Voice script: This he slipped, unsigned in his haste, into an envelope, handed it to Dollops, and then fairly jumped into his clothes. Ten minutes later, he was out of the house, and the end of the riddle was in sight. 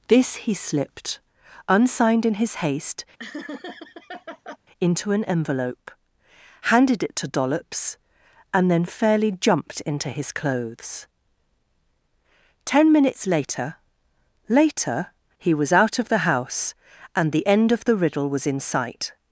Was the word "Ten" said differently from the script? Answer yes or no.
no